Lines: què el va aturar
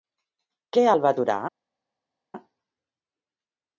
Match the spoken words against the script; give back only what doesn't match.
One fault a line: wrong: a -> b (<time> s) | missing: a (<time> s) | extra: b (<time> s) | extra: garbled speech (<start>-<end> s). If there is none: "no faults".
no faults